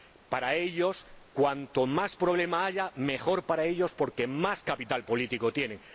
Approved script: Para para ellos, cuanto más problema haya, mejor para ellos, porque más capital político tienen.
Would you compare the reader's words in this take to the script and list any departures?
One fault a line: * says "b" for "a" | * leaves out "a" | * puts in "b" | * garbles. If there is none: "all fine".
* leaves out "para"